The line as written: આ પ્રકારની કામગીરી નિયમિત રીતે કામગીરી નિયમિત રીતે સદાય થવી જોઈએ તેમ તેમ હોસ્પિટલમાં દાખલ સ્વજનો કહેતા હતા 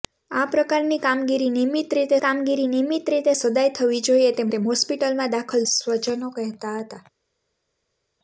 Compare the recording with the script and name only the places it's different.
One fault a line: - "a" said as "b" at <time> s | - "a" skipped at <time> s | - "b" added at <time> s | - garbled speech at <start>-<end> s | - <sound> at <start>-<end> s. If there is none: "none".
none